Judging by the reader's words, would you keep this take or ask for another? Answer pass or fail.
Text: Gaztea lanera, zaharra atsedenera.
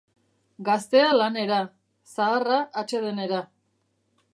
pass